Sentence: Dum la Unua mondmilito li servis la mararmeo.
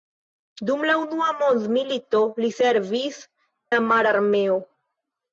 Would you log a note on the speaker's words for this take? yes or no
no